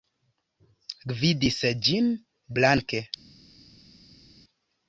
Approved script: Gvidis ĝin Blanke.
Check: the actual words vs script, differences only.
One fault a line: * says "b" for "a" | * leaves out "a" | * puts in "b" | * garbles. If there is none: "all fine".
all fine